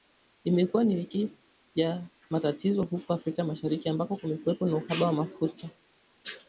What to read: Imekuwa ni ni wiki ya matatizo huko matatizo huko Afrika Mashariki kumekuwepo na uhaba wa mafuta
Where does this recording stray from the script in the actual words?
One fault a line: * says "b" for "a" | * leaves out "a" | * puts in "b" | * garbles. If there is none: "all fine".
* leaves out "ni"
* leaves out "matatizo huko"
* puts in "ambako"